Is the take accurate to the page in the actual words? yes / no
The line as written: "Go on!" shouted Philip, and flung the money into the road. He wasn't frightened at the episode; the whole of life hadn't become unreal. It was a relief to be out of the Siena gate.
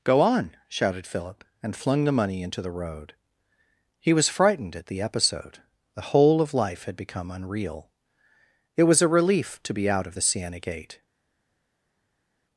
no